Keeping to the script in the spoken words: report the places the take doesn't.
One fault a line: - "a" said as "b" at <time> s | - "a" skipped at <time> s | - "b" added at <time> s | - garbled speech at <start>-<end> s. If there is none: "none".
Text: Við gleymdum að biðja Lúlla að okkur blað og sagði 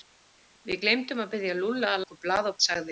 none